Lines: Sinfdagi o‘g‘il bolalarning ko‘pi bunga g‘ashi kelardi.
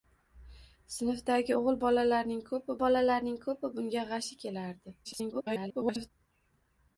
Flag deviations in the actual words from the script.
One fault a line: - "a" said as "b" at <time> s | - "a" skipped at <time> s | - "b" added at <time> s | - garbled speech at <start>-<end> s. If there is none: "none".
- "bolalarning ko‘pi" added at 2.8 s
- garbled speech at 5.0-6.1 s